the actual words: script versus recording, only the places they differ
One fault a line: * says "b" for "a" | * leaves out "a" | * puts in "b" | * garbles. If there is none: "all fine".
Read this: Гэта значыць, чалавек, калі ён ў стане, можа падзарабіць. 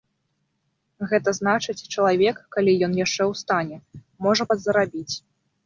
* puts in "яшчэ"